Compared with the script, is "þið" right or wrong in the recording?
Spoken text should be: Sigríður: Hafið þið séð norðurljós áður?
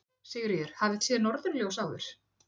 wrong